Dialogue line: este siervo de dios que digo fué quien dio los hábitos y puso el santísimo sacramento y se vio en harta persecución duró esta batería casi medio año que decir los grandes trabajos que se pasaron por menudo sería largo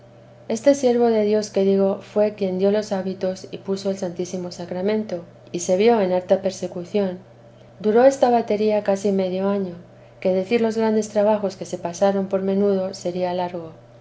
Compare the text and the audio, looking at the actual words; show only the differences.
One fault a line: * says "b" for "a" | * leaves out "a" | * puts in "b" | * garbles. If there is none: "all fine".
all fine